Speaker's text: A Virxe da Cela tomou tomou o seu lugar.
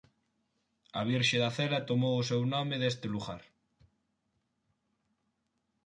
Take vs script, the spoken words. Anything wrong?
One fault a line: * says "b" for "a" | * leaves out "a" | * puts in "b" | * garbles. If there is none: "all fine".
* leaves out "tomou"
* puts in "nome deste"